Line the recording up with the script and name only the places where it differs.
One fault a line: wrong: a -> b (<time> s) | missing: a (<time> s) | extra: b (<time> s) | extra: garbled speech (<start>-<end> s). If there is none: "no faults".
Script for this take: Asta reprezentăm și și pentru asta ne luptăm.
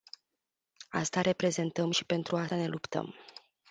missing: și (2.0 s)